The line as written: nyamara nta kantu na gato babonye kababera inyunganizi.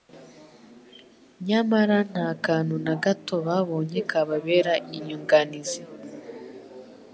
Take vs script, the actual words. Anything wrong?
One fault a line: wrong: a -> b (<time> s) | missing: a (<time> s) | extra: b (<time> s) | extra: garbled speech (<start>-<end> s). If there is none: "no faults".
no faults